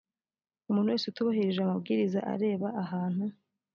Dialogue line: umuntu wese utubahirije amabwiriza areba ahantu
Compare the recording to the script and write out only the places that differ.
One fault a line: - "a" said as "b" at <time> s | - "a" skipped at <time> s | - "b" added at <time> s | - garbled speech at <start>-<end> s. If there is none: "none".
none